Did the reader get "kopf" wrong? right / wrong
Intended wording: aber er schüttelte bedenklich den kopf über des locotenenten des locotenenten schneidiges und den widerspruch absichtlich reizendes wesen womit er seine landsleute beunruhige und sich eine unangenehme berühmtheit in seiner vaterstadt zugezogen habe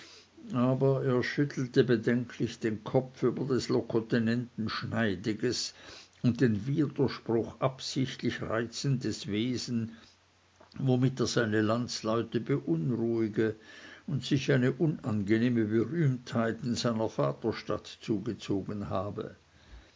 right